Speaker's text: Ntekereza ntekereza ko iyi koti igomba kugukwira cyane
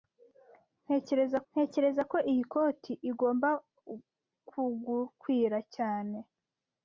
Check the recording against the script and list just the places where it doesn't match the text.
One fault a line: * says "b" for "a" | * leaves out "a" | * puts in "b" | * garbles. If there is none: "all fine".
all fine